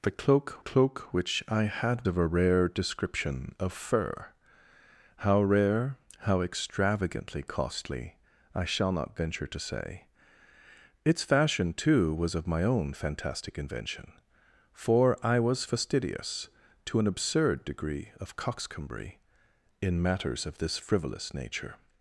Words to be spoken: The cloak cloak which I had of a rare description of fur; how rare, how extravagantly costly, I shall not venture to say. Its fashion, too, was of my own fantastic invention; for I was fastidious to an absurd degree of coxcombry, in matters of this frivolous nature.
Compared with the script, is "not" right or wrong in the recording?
right